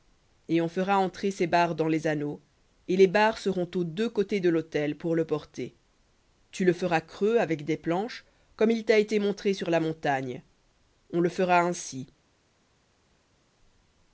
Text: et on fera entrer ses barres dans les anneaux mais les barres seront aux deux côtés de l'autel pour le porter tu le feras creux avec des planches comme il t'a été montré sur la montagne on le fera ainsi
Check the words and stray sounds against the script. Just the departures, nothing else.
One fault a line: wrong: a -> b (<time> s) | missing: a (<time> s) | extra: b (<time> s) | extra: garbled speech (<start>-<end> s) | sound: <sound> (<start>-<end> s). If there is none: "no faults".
wrong: mais -> et (2.9 s)